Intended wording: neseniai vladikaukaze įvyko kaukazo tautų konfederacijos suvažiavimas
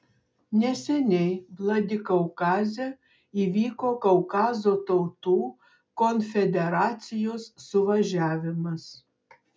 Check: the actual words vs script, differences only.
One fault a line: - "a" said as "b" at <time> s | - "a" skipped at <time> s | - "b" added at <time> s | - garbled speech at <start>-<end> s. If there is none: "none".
none